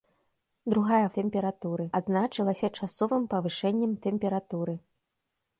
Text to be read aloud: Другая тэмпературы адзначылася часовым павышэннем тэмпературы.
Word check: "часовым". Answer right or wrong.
right